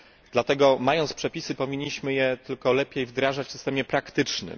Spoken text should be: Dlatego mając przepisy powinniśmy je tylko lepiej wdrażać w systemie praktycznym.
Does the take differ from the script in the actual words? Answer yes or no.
no